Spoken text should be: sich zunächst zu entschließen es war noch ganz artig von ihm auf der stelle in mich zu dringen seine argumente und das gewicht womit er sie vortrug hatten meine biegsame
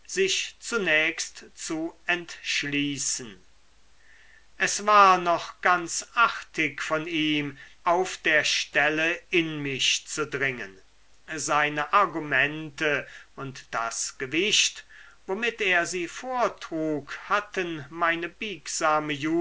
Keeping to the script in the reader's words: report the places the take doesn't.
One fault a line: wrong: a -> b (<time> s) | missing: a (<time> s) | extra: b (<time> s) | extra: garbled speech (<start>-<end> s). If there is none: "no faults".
no faults